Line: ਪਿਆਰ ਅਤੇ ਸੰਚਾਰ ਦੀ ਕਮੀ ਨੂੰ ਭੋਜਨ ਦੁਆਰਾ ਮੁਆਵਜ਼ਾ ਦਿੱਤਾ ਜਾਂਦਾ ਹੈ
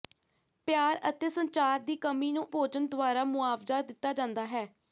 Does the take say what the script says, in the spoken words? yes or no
yes